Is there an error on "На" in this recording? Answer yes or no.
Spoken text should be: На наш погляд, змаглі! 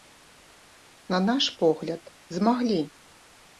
no